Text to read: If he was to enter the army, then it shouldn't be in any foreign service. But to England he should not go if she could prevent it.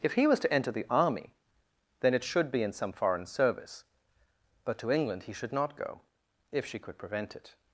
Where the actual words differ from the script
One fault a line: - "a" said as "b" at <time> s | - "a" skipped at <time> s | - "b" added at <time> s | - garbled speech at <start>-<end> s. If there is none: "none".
- "shouldn't" said as "should" at 2.2 s
- "any" said as "some" at 2.7 s